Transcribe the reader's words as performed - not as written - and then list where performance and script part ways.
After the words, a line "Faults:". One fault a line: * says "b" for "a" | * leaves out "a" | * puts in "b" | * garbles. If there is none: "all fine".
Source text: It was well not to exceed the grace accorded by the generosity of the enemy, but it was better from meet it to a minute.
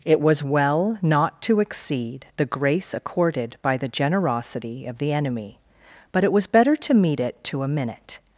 It was well not to exceed the grace accorded by the generosity of the enemy, but it was better to meet it to a minute.
Faults:
* says "to" for "from"